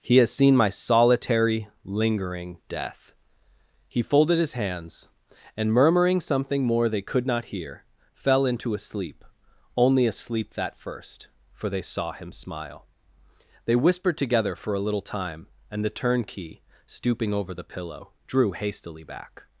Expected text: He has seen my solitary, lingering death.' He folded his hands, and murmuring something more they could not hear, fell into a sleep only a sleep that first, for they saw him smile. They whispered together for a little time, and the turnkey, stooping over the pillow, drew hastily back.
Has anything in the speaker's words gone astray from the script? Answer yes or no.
no